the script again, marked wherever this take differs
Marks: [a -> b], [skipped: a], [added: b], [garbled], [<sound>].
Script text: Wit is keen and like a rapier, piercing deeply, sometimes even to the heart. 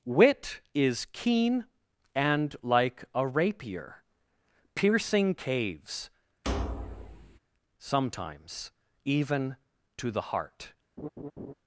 Wit is keen and like a rapier, piercing [deeply, -> caves] [thud] sometimes even to the heart. [laugh]